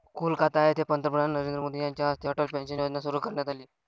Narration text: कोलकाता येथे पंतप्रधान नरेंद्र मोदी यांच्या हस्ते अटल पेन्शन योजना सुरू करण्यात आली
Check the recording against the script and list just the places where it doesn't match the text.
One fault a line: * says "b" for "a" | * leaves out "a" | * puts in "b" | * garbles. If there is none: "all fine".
all fine